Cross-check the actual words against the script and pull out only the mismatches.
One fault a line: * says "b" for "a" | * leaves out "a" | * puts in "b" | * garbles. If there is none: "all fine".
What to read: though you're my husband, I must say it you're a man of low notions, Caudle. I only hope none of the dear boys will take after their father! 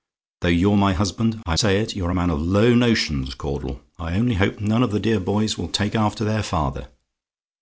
* leaves out "must"